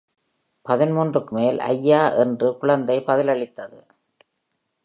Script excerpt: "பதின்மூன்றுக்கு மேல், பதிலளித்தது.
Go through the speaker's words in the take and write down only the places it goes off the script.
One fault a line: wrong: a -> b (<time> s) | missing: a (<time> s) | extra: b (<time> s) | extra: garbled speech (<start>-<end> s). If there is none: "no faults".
extra: ஐயா என்று குழந்தை (1.7 s)